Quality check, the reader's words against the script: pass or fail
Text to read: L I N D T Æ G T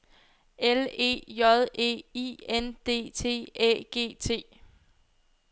fail